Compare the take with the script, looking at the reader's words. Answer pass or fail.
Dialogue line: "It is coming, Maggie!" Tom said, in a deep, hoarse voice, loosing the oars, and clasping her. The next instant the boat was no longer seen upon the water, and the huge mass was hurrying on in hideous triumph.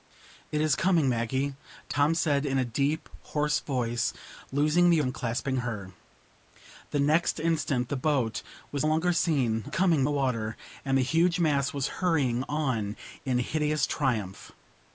fail